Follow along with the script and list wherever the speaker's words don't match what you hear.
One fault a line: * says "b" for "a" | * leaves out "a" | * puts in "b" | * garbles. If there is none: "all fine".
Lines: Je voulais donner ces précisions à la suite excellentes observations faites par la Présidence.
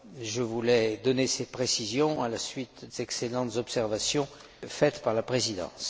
all fine